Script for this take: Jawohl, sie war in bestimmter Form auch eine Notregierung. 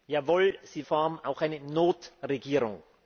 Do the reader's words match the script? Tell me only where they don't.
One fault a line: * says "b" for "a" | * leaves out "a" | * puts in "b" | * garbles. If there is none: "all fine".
* leaves out "war in bestimmter"